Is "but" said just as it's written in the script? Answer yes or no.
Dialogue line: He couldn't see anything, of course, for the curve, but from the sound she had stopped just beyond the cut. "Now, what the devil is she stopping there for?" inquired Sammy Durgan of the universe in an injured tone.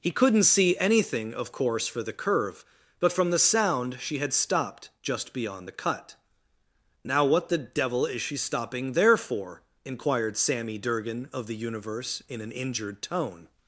yes